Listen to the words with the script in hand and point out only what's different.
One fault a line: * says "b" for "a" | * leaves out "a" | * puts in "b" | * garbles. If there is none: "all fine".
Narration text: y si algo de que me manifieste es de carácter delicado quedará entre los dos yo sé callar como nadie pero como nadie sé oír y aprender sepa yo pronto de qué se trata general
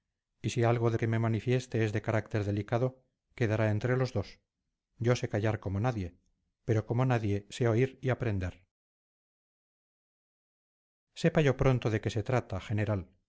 all fine